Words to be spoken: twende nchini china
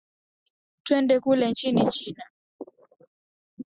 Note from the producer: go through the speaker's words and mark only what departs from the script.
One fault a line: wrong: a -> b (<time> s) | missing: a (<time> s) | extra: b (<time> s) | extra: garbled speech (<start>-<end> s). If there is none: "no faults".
extra: kule (1.2 s)